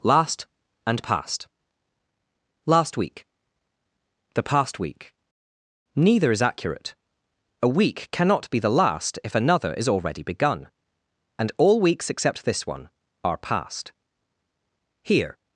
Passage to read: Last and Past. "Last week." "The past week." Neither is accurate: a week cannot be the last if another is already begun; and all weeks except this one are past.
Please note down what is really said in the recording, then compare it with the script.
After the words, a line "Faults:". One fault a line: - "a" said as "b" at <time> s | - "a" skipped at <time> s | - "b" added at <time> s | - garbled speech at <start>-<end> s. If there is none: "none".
Last and Past. "Last week." "The past week." Neither is accurate: a week cannot be the last if another is already begun; and all weeks except this one are past. Here
Faults:
- "Here" added at 15.0 s